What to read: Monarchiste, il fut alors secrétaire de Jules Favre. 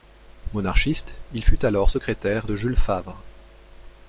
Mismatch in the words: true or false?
false